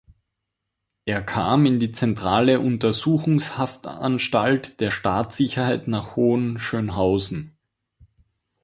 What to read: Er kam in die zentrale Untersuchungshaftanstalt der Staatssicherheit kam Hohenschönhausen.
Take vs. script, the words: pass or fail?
fail